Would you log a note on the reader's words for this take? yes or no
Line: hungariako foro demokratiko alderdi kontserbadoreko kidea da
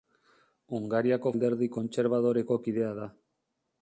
yes